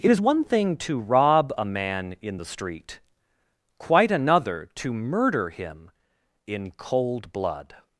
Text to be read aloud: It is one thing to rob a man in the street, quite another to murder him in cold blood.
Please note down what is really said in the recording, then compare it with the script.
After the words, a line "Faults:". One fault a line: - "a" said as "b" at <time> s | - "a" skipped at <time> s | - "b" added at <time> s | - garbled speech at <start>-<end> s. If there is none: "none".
It is one thing to rob a man in the street, quite another to murder him in cold blood.
Faults:
none